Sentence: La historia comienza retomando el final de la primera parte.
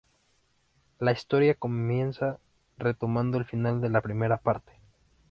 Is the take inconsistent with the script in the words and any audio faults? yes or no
no